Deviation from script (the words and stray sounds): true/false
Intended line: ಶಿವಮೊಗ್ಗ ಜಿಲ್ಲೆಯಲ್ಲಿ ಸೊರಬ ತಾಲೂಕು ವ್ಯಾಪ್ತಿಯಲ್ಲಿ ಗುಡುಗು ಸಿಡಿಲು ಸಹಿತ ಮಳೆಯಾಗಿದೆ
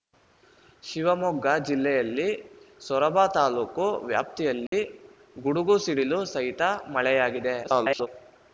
true